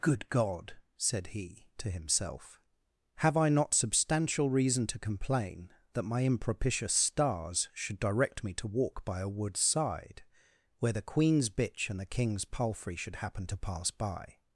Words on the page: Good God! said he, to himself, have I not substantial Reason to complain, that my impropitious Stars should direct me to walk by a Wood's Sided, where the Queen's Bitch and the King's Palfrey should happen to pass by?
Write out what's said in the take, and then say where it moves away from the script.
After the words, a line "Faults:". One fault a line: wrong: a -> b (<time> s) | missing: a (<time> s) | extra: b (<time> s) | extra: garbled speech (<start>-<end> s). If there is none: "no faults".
Good God! said he, to himself, have I not substantial Reason to complain, that my impropitious Stars should direct me to walk by a Wood's Side, where the Queen's Bitch and the King's Palfrey should happen to pass by?
Faults:
wrong: Sided -> Side (9.6 s)